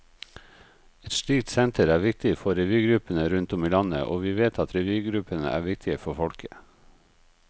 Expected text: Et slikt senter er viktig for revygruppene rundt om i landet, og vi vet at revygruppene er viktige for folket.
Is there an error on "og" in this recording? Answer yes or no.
no